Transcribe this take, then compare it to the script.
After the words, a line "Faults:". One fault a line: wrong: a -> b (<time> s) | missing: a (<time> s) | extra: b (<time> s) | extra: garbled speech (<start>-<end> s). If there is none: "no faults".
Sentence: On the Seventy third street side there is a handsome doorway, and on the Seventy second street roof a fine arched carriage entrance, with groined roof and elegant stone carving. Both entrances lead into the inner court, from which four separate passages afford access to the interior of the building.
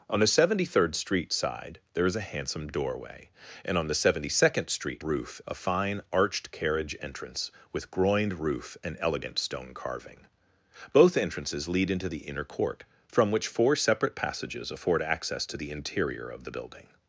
On the Seventy third street side there is a handsome doorway, and on the Seventy second street roof a fine arched carriage entrance, with groined roof and elegant stone carving. Both entrances lead into the inner court, from which four separate passages afford access to the interior of the building.
Faults:
no faults